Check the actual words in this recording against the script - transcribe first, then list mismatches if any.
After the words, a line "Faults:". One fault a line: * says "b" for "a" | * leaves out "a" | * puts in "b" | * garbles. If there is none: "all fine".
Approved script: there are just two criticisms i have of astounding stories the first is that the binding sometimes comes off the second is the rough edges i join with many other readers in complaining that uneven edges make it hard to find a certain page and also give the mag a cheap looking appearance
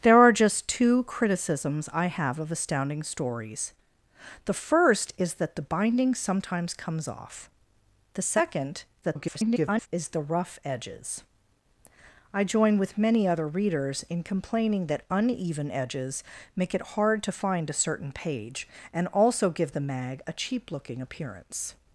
there are just two criticisms i have of astounding stories the first is that the binding sometimes comes off the second [garbled] is the rough edges i join with many other readers in complaining that uneven edges make it hard to find a certain page and also give the mag a cheap looking appearance
Faults:
* garbles